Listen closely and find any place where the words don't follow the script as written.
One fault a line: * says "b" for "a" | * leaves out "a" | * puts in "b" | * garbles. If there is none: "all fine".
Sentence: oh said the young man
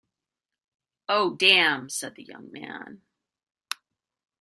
* puts in "damn"